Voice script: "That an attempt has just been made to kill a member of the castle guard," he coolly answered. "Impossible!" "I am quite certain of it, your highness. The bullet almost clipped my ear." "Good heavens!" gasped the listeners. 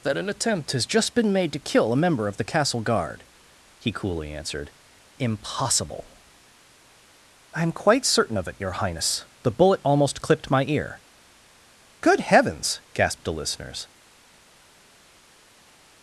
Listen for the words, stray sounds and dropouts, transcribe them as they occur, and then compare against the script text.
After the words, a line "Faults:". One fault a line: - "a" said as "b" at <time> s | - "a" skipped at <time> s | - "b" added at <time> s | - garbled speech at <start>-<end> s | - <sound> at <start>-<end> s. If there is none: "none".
"That an attempt has just been made to kill a member of the castle guard," he coolly answered. "Impossible!" "I am quite certain of it, your highness. The bullet almost clipped my ear." "Good heavens!" gasped the listeners.
Faults:
none